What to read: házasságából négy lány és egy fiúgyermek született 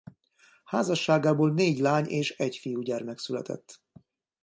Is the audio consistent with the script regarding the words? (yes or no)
yes